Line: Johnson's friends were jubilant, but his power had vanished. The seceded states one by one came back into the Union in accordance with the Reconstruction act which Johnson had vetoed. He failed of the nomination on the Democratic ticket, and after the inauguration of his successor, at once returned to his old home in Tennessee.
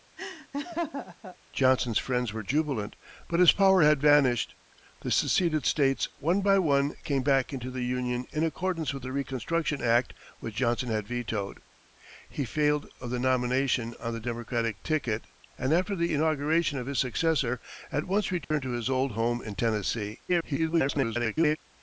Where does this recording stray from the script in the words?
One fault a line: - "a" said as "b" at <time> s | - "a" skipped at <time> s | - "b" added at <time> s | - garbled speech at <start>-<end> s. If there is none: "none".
- garbled speech at 20.3-21.6 s